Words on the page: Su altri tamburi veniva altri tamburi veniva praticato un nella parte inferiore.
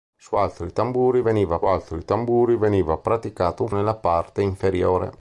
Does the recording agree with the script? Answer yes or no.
yes